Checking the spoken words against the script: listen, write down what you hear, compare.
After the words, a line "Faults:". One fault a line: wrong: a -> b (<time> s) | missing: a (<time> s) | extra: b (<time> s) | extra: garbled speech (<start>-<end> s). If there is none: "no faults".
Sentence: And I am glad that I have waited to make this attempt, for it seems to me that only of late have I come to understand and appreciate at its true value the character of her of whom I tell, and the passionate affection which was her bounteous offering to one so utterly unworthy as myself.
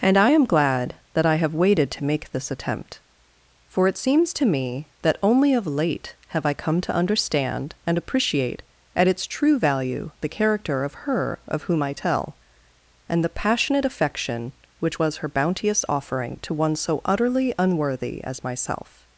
And I am glad that I have waited to make this attempt, for it seems to me that only of late have I come to understand and appreciate at its true value the character of her of whom I tell, and the passionate affection which was her bounteous offering to one so utterly unworthy as myself.
Faults:
no faults